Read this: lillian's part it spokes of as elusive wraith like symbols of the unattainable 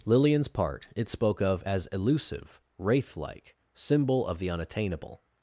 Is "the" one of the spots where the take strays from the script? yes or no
no